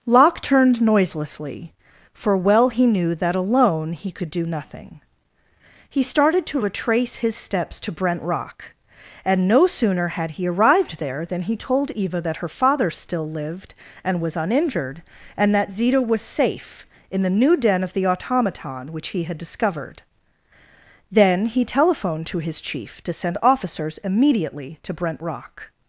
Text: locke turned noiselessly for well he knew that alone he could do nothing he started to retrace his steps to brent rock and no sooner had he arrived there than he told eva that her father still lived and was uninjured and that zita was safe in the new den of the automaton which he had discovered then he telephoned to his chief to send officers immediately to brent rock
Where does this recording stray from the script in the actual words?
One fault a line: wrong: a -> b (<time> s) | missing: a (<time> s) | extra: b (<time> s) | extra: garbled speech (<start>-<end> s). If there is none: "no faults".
no faults